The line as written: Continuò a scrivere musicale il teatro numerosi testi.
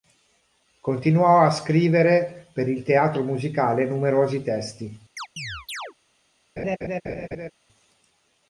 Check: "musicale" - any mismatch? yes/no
yes